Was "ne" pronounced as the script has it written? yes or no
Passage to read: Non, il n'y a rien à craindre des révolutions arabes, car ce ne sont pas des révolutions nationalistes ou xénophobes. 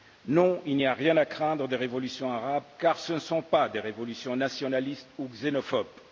yes